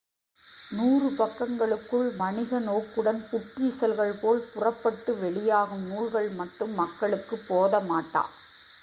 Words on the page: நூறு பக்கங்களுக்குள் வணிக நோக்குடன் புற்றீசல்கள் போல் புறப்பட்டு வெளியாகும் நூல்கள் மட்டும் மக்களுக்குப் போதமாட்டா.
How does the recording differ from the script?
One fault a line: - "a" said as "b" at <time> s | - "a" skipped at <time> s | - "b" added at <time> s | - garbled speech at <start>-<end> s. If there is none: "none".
none